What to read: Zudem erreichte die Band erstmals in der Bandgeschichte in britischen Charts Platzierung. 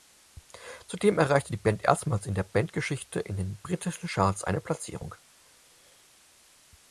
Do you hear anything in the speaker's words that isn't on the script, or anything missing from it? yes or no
yes